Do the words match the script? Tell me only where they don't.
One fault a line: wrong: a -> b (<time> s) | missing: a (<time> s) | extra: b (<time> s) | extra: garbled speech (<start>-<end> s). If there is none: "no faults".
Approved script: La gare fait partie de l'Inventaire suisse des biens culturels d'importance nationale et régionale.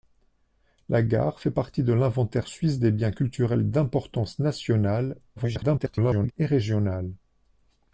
extra: garbled speech (5.4-6.3 s)